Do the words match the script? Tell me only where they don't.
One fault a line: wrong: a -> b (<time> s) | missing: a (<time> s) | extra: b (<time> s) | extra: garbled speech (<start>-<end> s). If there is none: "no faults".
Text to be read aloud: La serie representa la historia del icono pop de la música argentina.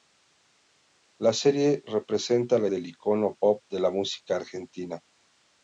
missing: historia (2.7 s)